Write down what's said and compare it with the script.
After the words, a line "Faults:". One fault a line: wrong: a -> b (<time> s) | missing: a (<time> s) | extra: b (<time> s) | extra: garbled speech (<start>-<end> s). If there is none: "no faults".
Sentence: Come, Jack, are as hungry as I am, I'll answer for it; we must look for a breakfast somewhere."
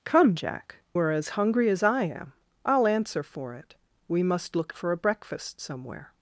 Come, Jack, are as hungry as I am, I'll answer for it; we must look for a breakfast somewhere."
Faults:
no faults